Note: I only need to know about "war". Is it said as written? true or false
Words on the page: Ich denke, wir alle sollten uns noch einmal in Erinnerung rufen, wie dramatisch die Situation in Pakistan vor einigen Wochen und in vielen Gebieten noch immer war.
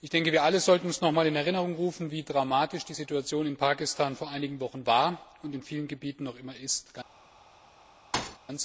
false